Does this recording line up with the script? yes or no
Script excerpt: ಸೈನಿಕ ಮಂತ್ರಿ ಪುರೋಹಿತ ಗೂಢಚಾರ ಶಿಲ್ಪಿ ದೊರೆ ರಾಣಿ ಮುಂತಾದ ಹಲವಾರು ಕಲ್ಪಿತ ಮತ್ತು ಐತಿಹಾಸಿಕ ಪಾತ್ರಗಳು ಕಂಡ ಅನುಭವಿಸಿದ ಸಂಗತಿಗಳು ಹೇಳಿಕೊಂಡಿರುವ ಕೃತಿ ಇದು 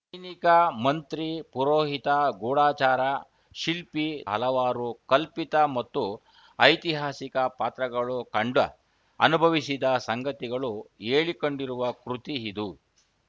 no